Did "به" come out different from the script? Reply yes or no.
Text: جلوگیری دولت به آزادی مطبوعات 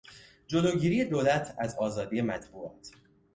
yes